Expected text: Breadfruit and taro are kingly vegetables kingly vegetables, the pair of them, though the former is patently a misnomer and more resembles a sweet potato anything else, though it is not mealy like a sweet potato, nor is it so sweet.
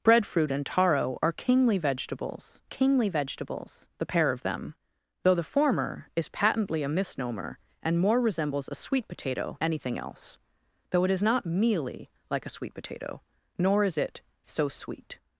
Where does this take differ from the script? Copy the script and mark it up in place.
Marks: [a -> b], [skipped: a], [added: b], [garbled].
Breadfruit and taro are kingly vegetables kingly vegetables, the pair of them, though the former is patently a misnomer and more resembles a sweet potato anything else, though it is not mealy like a sweet potato, nor is it so sweet.